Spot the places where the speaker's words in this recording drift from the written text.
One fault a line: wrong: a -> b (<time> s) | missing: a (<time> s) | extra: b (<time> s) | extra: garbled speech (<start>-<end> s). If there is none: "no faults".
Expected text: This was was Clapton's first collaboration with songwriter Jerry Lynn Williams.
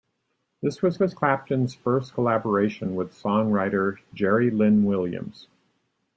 no faults